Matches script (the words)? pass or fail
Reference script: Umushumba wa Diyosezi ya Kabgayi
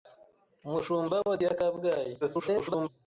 fail